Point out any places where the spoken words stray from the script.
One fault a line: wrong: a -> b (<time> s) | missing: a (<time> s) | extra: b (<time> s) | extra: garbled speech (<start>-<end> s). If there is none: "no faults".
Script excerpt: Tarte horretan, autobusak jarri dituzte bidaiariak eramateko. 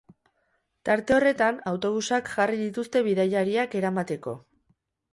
no faults